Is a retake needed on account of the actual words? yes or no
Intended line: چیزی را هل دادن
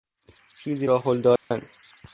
no